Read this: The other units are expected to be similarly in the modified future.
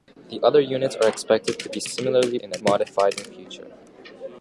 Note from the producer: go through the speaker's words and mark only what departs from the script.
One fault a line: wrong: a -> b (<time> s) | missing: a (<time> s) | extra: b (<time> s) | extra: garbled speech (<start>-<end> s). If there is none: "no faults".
no faults